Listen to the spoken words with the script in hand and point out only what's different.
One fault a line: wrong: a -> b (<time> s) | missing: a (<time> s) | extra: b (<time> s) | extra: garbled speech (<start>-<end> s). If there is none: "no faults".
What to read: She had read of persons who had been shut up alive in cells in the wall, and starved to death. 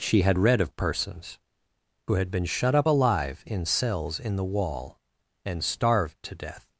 no faults